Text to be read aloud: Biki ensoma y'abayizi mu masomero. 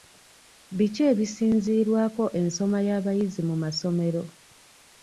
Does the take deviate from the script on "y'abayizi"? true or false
false